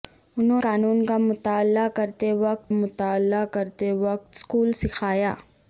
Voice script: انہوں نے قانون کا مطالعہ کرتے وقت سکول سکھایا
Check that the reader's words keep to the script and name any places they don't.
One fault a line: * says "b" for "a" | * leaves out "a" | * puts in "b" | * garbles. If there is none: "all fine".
* leaves out "نے"
* puts in "مطالعہ کرتے وقت"